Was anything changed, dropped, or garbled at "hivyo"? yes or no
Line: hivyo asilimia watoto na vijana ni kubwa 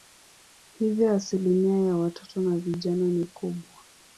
no